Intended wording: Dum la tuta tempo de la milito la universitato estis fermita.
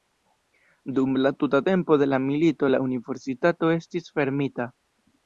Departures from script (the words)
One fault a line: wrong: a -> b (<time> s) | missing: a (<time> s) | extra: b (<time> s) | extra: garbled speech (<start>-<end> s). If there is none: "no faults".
no faults